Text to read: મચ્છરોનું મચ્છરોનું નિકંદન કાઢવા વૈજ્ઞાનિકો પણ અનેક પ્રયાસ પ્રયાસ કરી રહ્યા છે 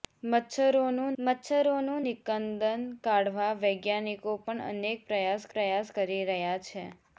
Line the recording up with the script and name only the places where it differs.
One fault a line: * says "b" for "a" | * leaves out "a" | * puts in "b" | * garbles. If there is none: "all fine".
all fine